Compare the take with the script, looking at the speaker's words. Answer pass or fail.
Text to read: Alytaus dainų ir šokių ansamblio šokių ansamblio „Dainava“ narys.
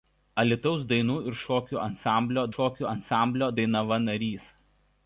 pass